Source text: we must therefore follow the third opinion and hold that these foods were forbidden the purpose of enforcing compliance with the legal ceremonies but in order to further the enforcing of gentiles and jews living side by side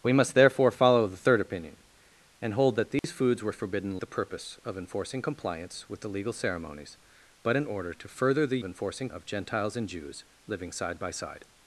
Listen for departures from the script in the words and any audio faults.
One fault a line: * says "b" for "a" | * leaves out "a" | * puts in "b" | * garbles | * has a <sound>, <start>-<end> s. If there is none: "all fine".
* has a dropout, 3.0-3.0 s